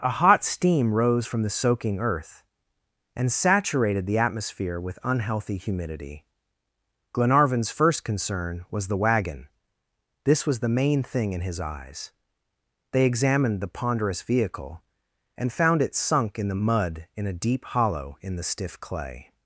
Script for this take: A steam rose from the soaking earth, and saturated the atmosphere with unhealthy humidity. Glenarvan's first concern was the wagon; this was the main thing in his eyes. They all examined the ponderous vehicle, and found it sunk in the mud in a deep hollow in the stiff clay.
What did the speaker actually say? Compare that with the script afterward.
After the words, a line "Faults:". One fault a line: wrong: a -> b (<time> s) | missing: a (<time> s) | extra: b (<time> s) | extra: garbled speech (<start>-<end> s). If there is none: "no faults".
A hot steam rose from the soaking earth, and saturated the atmosphere with unhealthy humidity. Glenarvan's first concern was the wagon; this was the main thing in his eyes. They examined the ponderous vehicle, and found it sunk in the mud in a deep hollow in the stiff clay.
Faults:
extra: hot (0.2 s)
missing: all (13.1 s)